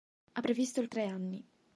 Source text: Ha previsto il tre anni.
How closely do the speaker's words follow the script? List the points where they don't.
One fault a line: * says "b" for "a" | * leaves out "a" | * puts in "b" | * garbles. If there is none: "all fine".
all fine